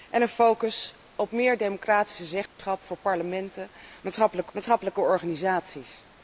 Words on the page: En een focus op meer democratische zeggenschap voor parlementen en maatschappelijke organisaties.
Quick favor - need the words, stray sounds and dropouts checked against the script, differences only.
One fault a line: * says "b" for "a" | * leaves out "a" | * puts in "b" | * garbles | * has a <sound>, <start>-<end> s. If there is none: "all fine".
* has a dropout, 2.5-2.6 s
* puts in "maatschappelijke"